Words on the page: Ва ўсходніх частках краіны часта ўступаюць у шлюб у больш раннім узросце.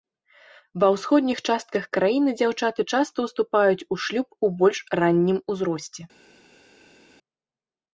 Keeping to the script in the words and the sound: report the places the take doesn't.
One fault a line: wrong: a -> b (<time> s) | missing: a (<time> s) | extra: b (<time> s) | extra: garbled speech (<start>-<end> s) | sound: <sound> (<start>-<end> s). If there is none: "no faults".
extra: дзяўчаты (2.4 s)